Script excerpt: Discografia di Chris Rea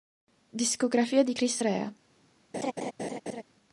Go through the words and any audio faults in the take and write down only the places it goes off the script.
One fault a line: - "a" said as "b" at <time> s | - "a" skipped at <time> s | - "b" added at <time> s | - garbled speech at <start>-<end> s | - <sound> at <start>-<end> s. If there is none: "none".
- laugh at 2.5-3.4 s